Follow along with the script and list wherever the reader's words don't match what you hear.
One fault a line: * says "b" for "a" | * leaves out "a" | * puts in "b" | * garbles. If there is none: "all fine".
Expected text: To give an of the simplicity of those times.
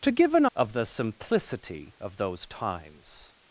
all fine